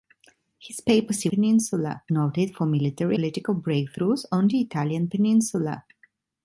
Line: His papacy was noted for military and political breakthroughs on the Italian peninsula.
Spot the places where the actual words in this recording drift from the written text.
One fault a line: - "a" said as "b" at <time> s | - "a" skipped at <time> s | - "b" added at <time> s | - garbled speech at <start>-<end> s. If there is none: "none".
- "was" said as "peninsula" at 1.3 s
- "and" skipped at 3.2 s